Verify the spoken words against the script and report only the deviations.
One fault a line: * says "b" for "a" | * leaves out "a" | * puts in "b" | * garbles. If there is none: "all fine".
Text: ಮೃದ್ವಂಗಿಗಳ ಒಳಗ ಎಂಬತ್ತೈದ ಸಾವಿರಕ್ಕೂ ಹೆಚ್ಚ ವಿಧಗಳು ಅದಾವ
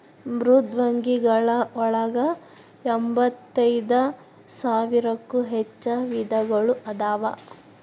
all fine